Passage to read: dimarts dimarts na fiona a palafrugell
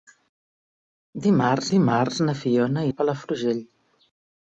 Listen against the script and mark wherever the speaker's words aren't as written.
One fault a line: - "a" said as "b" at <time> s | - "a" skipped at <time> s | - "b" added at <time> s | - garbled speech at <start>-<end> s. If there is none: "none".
none